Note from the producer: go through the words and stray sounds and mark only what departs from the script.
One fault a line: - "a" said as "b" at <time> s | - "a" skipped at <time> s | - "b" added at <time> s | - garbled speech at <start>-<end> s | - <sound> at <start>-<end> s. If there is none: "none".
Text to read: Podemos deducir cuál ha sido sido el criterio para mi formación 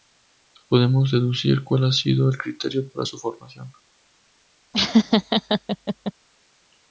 - "sido" skipped at 2.3 s
- "mi" said as "su" at 3.0 s
- laugh at 4.7-6.1 s